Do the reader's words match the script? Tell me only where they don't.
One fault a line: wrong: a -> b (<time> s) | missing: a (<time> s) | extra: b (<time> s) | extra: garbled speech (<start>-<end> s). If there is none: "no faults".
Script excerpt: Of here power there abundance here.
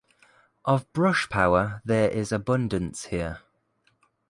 wrong: here -> brush (0.9 s)
extra: is (2.1 s)